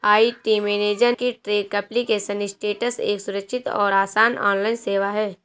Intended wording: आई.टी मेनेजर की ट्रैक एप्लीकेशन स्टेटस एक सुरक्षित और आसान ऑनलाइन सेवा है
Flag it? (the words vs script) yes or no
no